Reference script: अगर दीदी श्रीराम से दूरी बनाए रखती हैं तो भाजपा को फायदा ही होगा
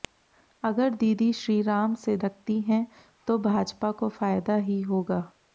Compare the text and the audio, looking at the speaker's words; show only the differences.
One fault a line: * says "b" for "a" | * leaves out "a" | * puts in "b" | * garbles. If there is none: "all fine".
* leaves out "दूरी बनाए"